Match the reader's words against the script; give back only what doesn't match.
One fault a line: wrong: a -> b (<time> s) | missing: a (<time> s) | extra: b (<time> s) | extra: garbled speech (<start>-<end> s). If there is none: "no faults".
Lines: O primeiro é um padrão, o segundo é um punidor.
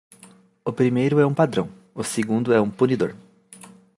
no faults